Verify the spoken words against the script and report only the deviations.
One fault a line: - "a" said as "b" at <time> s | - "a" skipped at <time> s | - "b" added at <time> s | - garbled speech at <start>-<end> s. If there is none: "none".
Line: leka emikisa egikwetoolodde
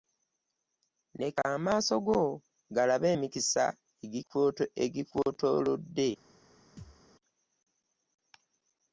- "amaaso go galabe" added at 1.6 s